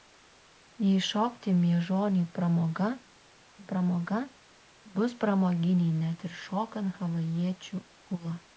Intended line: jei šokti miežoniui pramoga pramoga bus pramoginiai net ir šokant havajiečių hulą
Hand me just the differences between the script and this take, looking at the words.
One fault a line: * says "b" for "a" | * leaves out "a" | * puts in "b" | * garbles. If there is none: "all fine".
all fine